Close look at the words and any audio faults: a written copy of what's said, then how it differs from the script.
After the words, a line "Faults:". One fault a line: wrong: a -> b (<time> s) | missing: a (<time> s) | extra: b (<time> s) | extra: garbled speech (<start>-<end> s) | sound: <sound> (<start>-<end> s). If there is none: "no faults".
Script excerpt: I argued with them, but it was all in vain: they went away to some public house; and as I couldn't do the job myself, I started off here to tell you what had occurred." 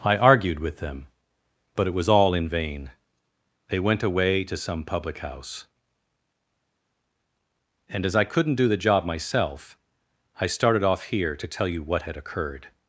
I argued with them, but it was all in vain: they went away to some public house; and as I couldn't do the job myself, I started off here to tell you what had occurred."
Faults:
no faults